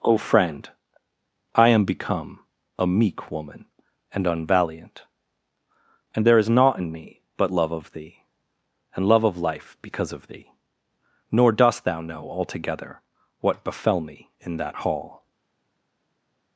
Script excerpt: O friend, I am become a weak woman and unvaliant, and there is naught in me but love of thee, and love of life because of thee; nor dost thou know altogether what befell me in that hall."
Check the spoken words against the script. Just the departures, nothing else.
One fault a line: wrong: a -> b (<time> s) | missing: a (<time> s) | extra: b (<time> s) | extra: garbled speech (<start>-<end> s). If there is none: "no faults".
wrong: weak -> meek (2.9 s)